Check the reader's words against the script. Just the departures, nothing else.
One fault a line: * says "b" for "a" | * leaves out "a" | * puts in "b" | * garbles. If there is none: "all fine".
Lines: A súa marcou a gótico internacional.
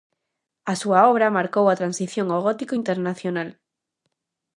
* puts in "obra"
* puts in "transición ao"